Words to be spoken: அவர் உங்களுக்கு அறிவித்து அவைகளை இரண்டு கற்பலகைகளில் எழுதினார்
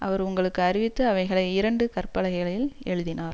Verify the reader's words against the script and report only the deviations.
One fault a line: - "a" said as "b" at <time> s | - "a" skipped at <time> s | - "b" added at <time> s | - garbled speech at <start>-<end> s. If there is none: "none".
none